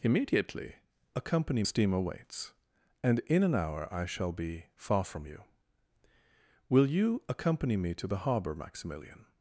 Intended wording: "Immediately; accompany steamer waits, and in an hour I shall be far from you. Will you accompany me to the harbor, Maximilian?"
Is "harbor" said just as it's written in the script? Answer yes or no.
yes